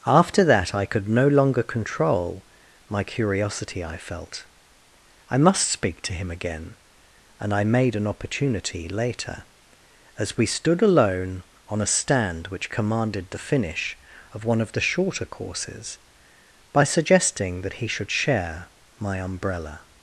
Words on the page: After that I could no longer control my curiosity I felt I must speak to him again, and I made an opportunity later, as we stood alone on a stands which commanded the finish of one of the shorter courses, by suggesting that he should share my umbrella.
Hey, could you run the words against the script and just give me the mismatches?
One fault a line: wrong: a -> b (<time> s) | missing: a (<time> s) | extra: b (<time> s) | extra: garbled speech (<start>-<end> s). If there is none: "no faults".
wrong: stands -> stand (11.9 s)